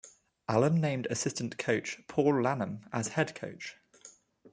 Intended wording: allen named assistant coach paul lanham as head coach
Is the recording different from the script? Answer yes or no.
no